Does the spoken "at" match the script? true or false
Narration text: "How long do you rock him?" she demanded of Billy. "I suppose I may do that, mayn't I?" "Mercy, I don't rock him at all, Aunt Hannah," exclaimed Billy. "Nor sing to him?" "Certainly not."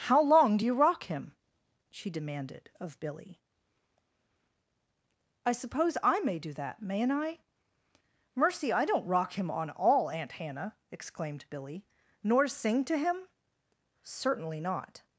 false